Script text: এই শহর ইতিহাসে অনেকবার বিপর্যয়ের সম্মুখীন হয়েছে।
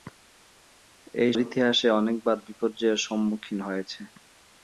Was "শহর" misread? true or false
true